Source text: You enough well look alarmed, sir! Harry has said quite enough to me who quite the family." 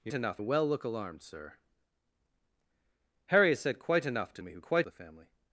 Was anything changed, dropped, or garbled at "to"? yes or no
no